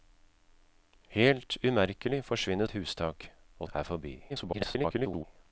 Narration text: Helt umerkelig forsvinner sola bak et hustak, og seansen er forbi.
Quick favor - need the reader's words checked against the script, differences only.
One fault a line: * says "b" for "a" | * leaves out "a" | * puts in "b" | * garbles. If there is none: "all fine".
* leaves out "sola bak"
* leaves out "seansen"
* garbles